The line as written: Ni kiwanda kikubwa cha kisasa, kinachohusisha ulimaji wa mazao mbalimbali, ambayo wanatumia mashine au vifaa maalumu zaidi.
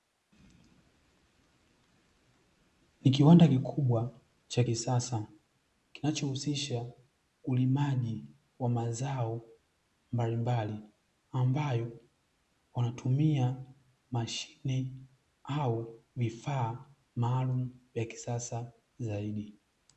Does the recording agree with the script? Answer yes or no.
no